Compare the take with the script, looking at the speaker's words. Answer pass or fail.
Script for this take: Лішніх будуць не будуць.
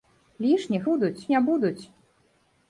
pass